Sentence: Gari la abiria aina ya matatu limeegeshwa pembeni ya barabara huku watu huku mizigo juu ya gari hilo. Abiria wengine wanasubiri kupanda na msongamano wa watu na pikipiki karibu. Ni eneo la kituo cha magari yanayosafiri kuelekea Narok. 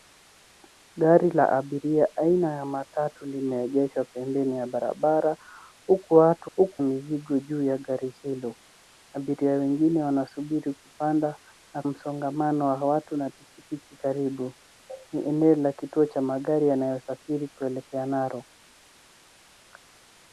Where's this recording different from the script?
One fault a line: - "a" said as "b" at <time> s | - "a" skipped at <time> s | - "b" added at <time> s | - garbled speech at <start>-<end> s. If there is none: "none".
none